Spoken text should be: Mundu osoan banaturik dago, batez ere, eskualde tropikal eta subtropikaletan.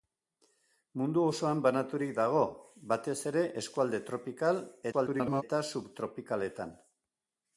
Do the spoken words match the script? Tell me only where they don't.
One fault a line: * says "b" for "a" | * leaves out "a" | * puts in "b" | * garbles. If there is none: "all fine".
* garbles